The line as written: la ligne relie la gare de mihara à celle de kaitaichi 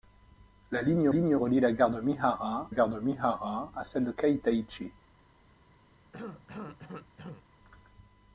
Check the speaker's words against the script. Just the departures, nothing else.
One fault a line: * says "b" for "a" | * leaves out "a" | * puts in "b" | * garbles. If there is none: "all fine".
* puts in "ligne"
* puts in "gare de mihara"